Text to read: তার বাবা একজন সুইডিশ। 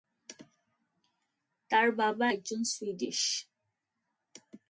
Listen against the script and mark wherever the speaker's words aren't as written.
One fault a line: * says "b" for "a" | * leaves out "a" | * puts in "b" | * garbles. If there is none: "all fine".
all fine